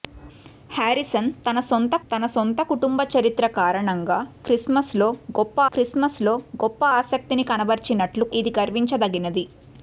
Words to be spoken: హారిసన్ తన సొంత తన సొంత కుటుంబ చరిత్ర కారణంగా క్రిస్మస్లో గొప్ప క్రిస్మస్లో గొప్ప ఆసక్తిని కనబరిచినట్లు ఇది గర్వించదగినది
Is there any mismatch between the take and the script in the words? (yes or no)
no